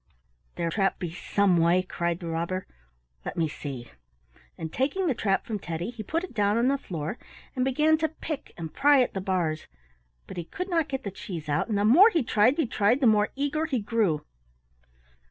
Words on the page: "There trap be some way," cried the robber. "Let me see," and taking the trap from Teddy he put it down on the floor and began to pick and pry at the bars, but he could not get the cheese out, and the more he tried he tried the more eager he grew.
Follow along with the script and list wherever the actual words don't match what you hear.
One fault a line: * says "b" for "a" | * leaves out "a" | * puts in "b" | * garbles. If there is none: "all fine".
all fine